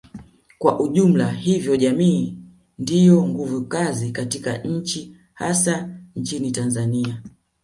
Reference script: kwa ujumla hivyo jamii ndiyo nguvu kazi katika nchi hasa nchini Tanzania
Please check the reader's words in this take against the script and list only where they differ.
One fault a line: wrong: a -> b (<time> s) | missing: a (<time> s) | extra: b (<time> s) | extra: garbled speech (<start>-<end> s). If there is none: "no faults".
no faults